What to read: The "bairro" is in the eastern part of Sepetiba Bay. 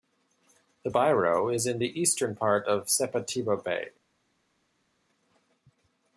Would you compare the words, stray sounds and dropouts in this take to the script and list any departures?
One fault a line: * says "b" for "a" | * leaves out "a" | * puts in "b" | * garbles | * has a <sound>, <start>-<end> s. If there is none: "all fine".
all fine